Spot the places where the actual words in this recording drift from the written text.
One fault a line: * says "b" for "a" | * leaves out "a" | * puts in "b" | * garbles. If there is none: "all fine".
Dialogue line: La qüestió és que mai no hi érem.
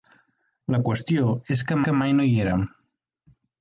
* puts in "que"